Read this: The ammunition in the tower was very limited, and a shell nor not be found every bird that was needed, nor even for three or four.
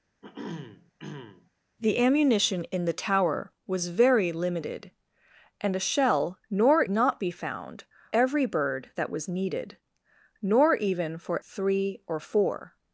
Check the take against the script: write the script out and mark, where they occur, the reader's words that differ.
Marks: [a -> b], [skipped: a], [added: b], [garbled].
The ammunition in the tower was very limited, and a shell nor not be found every bird that was needed, nor even for three or four.